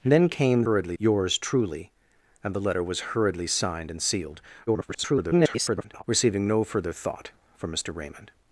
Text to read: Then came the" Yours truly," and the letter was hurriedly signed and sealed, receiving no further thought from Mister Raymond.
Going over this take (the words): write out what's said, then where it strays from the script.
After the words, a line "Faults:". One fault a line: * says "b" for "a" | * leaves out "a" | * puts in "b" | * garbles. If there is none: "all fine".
Then came hurriedly" Yours truly," and the letter was hurriedly signed and sealed, [garbled] receiving no further thought from Mister Raymond.
Faults:
* says "hurriedly" for "the"
* garbles